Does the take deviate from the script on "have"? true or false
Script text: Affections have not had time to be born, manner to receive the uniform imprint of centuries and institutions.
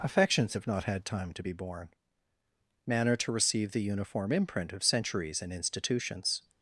false